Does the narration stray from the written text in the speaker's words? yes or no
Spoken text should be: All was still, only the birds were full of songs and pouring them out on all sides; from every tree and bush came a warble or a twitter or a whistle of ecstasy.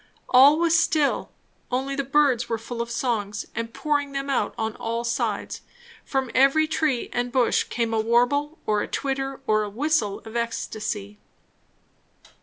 no